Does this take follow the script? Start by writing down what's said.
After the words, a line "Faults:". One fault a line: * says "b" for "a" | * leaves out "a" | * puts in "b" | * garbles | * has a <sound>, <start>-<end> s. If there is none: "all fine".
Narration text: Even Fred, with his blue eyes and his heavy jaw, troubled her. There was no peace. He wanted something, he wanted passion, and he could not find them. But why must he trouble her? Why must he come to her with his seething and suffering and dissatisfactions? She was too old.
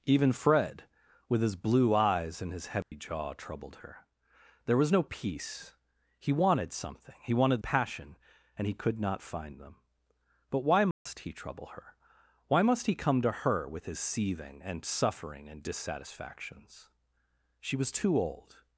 Even Fred, with his blue eyes and his heavy jaw, troubled her. There was no peace. He wanted something, he wanted passion, and he could not find them. But why must he trouble her? Why must he come to her with his seething and suffering and dissatisfactions? She was too old.
Faults:
* has a dropout, 2.8-2.9 s
* has a dropout, 10.9-11.1 s